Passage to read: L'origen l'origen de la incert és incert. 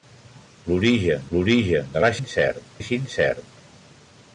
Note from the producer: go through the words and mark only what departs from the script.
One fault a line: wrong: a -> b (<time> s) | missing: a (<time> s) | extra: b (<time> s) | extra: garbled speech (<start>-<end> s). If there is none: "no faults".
no faults